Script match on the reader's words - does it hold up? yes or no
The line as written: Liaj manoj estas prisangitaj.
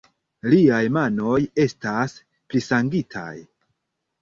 yes